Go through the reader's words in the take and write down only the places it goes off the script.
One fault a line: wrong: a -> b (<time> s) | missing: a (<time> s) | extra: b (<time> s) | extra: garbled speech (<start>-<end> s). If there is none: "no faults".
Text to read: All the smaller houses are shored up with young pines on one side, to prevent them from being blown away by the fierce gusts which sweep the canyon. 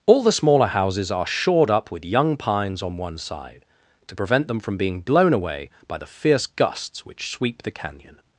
no faults